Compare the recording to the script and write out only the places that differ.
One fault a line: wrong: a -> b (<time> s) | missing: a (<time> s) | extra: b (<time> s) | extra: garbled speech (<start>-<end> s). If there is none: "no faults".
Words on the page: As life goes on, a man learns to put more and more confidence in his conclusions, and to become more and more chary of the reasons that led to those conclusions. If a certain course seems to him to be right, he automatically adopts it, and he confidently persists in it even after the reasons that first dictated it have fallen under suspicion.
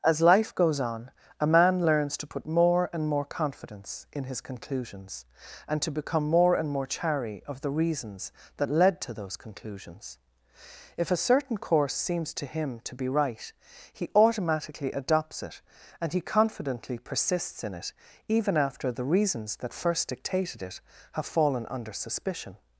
no faults